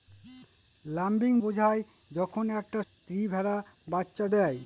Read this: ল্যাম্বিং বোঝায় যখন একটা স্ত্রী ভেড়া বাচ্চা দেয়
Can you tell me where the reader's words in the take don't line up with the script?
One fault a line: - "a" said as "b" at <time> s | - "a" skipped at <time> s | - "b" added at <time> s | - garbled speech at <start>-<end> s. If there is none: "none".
none